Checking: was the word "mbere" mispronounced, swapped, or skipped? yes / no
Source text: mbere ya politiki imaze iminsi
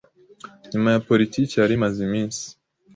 yes